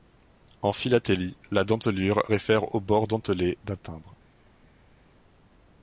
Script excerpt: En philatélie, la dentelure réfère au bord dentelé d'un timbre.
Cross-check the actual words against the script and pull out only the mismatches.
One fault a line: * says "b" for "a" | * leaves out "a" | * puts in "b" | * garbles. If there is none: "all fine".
all fine